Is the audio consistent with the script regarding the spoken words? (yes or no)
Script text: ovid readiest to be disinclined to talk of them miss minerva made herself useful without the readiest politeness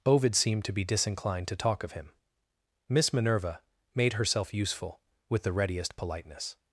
no